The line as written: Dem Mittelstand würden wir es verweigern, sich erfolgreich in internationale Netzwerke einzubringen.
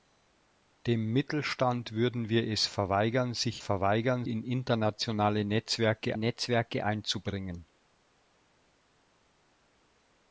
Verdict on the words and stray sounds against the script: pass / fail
fail